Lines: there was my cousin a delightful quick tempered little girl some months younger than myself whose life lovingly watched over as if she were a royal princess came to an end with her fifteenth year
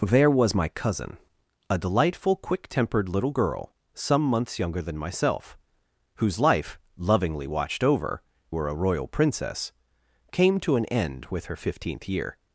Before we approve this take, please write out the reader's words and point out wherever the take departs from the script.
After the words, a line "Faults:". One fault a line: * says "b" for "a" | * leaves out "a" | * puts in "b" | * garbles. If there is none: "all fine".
there was my cousin a delightful quick tempered little girl some months younger than myself whose life lovingly watched over were a royal princess came to an end with her fifteenth year
Faults:
* leaves out "as if she"